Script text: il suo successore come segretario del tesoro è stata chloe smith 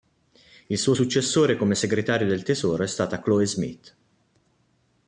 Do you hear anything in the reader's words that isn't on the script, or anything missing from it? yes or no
no